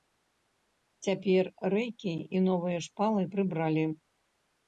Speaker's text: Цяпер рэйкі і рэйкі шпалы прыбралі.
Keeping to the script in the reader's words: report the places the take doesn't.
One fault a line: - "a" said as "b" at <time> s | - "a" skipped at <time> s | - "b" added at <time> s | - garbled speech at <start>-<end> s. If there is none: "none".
- "рэйкі" said as "новыя" at 2.5 s